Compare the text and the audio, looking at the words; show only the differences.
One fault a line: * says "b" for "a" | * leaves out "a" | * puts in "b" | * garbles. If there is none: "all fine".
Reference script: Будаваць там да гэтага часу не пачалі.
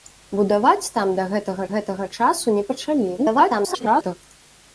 * puts in "гэтага"
* garbles